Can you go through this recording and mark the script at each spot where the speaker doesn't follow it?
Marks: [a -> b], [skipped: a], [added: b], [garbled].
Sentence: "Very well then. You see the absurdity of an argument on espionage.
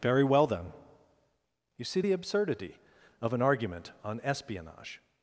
"Very well then. You see the absurdity of an argument on espionage.